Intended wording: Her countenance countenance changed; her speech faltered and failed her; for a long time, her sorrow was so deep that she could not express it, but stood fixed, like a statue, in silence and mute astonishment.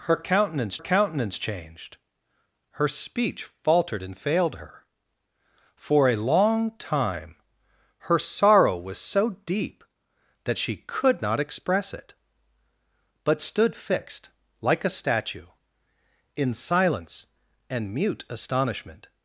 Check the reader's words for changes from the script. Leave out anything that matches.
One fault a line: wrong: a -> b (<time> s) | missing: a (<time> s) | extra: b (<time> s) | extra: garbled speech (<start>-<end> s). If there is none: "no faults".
no faults